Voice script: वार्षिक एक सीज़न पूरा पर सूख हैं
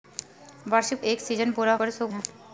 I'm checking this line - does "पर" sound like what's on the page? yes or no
yes